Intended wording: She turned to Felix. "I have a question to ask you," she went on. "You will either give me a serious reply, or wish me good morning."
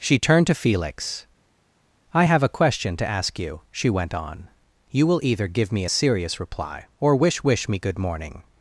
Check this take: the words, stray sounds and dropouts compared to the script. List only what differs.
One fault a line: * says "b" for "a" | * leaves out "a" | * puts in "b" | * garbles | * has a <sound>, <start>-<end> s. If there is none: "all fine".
* puts in "wish"